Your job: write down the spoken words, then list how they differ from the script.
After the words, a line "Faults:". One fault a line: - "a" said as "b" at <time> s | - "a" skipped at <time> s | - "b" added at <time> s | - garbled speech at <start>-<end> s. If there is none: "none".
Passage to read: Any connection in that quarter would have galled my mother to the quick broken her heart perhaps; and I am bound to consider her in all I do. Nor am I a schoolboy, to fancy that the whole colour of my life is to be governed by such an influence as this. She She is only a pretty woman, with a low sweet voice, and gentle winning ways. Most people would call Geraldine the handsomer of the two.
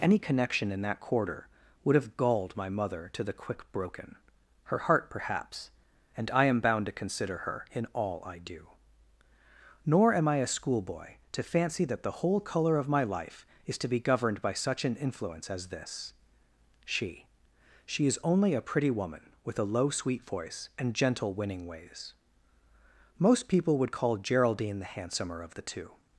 Any connection in that quarter would have galled my mother to the quick broken her heart perhaps; and I am bound to consider her in all I do. Nor am I a schoolboy, to fancy that the whole colour of my life is to be governed by such an influence as this. She She is only a pretty woman, with a low sweet voice, and gentle winning ways. Most people would call Geraldine the handsomer of the two.
Faults:
none